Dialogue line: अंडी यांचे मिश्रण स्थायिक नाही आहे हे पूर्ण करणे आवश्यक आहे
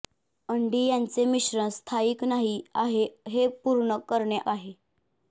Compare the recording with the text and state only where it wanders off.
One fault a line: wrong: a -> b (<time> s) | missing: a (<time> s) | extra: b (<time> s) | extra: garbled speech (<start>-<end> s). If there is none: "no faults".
missing: आवश्यक (4.4 s)